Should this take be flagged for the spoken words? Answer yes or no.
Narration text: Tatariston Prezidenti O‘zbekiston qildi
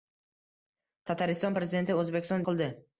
no